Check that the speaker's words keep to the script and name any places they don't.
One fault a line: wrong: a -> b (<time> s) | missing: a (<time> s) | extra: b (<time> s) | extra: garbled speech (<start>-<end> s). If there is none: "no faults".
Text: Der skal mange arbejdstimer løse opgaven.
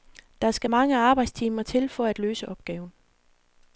extra: til for at (1.6 s)